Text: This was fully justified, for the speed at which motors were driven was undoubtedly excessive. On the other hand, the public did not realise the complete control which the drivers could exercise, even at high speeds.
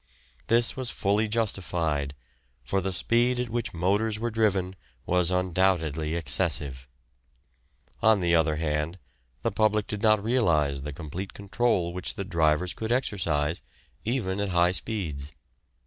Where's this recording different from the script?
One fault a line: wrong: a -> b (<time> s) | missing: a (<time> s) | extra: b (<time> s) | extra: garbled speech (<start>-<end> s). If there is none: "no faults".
no faults